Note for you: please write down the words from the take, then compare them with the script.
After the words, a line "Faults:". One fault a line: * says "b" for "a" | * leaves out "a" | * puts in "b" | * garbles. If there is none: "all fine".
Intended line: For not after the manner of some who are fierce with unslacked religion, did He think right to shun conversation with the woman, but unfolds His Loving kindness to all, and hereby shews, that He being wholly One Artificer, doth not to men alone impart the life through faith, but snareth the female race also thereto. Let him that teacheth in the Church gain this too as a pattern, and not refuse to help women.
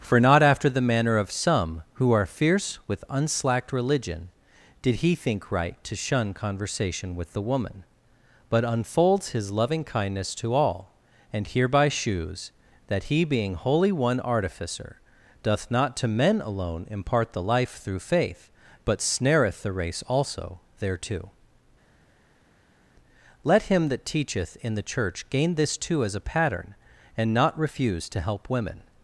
For not after the manner of some who are fierce with unslacked religion, did He think right to shun conversation with the woman, but unfolds His Loving kindness to all, and hereby shews, that He being wholly One Artificer, doth not to men alone impart the life through faith, but snareth the race also thereto. Let him that teacheth in the Church gain this too as a pattern, and not refuse to help women.
Faults:
* leaves out "female"